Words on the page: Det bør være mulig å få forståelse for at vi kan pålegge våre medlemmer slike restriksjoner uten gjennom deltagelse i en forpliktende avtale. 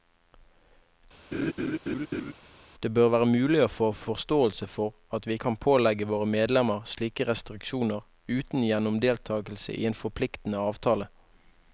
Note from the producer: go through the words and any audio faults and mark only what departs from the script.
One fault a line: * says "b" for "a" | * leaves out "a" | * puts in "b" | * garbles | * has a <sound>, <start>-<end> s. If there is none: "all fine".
* has a laugh, 1.3-2.3 s